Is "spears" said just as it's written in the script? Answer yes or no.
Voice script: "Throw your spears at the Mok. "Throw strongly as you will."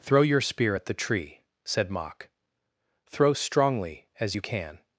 no